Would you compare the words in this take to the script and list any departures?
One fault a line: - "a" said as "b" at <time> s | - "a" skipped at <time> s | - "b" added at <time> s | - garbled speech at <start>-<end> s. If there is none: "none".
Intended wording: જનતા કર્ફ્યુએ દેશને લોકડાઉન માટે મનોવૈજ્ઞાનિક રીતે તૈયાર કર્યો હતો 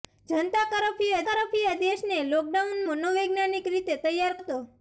- "કર્ફ્યુએ" added at 1.3 s
- "માટે" skipped at 2.8 s
- "કર્યો" skipped at 4.4 s